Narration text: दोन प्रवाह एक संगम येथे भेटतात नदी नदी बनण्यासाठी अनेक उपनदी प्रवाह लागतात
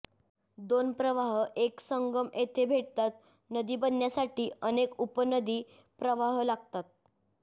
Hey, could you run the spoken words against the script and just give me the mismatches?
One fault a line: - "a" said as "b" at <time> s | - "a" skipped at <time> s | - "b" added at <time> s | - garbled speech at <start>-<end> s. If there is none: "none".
- "नदी" skipped at 3.8 s